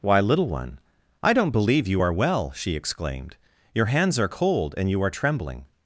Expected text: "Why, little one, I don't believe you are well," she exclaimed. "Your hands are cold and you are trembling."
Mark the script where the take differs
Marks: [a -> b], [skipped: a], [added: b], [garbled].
"Why, little one, I don't believe you are well," she exclaimed. "Your hands are cold and you are trembling."